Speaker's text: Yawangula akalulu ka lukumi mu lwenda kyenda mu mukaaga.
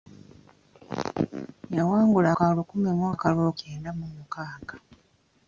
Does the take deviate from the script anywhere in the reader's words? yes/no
yes